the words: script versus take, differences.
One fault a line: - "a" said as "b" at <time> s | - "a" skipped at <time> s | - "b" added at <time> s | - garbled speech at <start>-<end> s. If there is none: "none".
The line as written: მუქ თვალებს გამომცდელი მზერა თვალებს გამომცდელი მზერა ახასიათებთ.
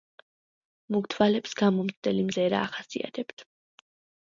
- "თვალებს გამომცდელი მზერა" skipped at 2.6 s